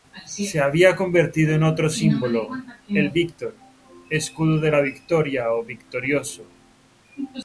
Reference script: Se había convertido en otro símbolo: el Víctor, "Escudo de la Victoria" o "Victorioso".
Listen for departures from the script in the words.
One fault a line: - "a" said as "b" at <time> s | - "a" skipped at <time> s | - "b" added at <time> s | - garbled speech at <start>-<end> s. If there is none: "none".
none